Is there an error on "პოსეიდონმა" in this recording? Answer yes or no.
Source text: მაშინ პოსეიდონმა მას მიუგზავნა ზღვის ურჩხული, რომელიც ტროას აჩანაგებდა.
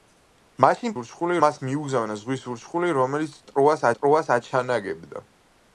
yes